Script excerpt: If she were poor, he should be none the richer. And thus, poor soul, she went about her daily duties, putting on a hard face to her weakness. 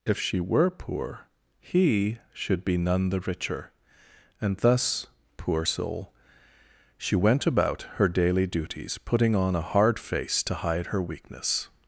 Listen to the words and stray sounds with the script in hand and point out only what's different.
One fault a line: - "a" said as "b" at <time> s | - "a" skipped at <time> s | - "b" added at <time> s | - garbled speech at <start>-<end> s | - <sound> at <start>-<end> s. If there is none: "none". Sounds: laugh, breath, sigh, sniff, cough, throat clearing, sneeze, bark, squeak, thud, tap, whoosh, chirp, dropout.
- "hide" added at 10.5 s